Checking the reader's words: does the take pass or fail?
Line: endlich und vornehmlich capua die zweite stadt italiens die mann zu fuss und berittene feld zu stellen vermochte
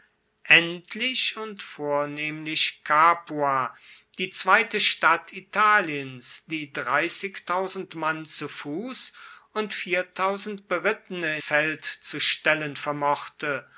pass